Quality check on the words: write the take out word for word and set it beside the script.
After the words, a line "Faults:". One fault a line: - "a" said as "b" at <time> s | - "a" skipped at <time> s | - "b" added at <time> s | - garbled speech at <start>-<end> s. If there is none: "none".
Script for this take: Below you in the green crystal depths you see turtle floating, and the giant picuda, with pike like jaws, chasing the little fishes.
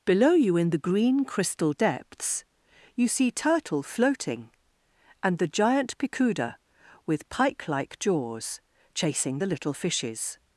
Below you in the green crystal depths you see turtle floating, and the giant picuda, with pike like jaws, chasing the little fishes.
Faults:
none